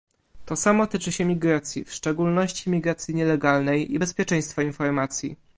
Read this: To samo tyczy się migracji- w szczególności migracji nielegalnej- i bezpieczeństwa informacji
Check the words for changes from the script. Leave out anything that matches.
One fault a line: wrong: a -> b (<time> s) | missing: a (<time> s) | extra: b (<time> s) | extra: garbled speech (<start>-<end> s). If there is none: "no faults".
no faults